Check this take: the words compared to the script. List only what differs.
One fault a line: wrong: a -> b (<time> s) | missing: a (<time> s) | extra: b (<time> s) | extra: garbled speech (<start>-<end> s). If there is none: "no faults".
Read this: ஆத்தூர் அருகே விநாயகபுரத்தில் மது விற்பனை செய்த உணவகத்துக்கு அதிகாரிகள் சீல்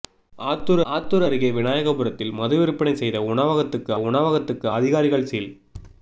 extra: ஆத்தூர் (0.9 s)
extra: உணவகத்துக்கு (4.0 s)